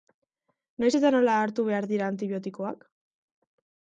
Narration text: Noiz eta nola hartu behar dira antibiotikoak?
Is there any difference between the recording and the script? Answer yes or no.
no